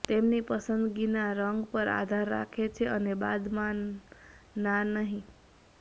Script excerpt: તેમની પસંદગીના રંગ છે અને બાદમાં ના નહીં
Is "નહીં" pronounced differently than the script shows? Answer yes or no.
no